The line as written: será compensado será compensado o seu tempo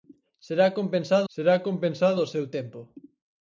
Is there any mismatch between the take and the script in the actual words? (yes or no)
no